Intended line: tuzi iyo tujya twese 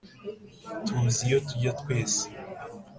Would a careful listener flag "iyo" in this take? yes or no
no